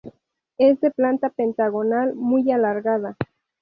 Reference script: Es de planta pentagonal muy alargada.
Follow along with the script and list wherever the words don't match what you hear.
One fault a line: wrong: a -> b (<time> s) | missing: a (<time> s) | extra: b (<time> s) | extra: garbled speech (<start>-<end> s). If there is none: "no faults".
no faults